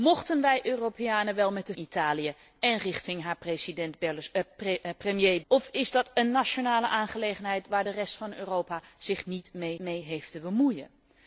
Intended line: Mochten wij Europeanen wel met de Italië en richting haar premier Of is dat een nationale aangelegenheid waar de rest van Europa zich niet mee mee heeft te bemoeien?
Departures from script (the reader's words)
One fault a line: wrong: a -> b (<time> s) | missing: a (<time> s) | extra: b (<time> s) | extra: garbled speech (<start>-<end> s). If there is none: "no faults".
no faults